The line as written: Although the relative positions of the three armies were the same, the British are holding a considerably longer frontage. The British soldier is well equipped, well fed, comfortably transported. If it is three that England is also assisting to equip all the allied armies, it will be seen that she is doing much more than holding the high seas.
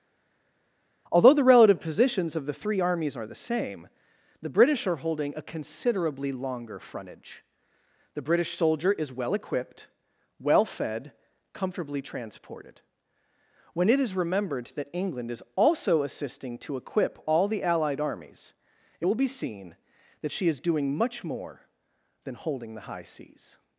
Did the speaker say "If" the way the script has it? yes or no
no